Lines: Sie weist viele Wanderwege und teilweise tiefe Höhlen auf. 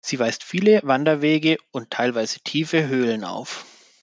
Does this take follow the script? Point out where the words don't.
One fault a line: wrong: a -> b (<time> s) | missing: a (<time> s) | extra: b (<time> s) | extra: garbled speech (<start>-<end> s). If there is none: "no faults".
no faults